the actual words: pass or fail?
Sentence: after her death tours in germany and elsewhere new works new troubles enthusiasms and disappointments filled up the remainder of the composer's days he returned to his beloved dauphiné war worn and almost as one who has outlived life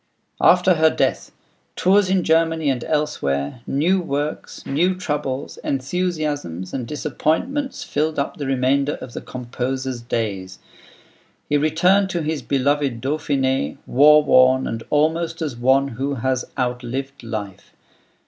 pass